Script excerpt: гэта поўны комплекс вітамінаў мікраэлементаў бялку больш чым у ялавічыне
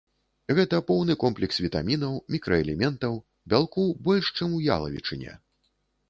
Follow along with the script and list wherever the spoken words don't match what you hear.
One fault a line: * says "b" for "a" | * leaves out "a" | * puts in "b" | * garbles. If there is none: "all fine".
all fine